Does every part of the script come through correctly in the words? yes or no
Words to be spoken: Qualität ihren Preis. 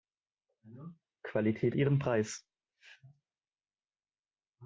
yes